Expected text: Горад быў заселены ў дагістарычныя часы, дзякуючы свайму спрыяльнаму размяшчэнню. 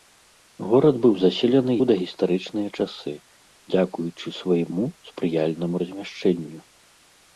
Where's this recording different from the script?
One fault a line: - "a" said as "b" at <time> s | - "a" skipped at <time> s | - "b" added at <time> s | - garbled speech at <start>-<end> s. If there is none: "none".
none